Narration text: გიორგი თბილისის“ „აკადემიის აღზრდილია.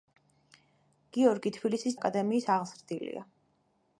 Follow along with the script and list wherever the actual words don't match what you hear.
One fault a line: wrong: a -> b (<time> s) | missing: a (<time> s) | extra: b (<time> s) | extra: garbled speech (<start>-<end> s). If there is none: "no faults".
no faults